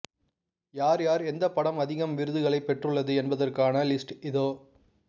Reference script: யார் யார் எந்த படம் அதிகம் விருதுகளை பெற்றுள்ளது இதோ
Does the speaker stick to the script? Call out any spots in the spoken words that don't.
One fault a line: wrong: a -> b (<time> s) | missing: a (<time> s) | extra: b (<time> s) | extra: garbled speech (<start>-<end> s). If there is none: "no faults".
extra: என்பதற்கான லிஸ்ட் (3.1 s)